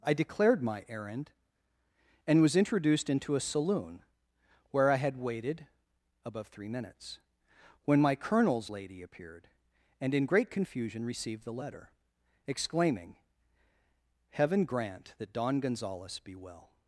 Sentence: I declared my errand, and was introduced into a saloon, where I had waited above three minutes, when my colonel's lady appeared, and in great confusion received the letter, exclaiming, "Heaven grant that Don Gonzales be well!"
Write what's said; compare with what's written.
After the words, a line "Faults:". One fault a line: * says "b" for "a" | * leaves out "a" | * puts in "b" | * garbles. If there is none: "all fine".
I declared my errand, and was introduced into a saloon, where I had waited above three minutes, when my colonel's lady appeared, and in great confusion received the letter, exclaiming, "Heaven grant that Don Gonzales be well!"
Faults:
all fine